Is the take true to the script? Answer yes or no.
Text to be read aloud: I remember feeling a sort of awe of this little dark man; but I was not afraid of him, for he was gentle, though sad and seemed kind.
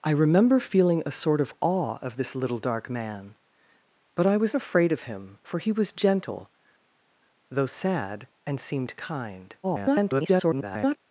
no